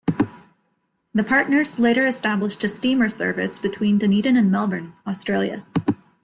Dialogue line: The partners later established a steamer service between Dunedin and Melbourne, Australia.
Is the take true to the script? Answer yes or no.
yes